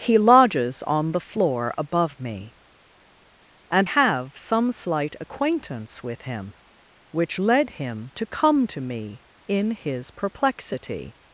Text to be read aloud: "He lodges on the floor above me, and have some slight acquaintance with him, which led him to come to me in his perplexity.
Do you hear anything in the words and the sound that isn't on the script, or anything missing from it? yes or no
no